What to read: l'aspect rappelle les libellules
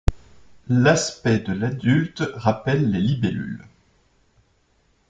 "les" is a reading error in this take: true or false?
false